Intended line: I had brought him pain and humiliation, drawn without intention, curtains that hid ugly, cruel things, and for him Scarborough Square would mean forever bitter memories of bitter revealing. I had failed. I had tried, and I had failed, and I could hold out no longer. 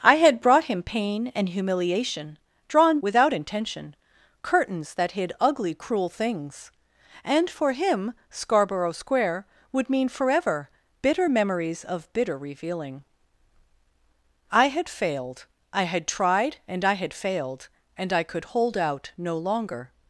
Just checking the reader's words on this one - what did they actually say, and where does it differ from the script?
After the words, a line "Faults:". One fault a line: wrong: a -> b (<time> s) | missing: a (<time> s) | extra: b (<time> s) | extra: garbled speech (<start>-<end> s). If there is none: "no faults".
I had brought him pain and humiliation, drawn without intention, curtains that hid ugly, cruel things, and for him Scarborough Square would mean forever bitter memories of bitter revealing. I had failed. I had tried, and I had failed, and I could hold out no longer.
Faults:
no faults